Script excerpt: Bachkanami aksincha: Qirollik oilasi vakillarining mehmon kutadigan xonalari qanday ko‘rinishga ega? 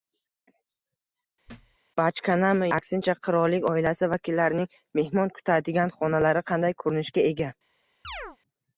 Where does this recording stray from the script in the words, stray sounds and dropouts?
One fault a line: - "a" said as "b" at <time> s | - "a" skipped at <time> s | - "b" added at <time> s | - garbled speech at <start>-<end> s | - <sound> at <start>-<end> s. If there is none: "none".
- thud at 1.5-1.8 s
- chirp at 8.0-8.4 s